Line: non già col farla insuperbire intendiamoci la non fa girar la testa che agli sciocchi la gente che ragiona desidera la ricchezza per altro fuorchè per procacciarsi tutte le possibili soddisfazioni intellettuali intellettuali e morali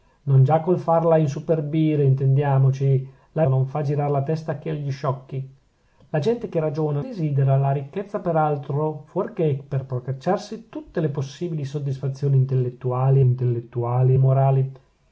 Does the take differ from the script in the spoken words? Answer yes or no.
no